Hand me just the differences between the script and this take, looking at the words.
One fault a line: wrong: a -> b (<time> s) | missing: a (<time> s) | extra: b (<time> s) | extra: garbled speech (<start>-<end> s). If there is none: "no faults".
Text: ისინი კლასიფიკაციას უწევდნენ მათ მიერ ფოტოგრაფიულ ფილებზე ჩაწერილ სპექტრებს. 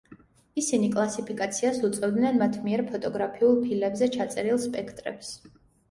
no faults